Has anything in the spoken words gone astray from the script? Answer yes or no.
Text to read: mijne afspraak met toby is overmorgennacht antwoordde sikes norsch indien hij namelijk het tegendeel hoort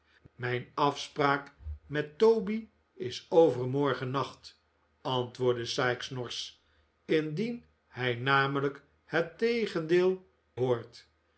no